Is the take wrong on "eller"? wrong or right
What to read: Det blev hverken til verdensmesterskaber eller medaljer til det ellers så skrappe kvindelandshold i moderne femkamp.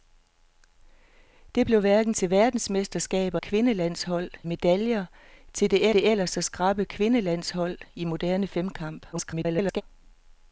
wrong